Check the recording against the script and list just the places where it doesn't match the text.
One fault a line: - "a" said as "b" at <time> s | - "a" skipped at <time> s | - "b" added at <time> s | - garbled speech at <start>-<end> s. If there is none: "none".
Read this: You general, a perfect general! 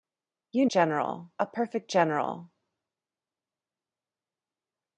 none